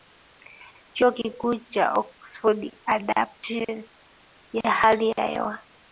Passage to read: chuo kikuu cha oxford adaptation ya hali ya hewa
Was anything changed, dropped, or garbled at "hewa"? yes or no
no